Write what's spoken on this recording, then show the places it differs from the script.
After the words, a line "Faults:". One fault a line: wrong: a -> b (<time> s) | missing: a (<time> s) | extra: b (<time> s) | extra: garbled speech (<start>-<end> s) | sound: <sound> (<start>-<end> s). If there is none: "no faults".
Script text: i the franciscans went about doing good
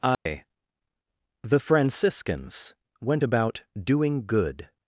i the franciscans went about doing good
Faults:
sound: dropout (0.1-0.3 s)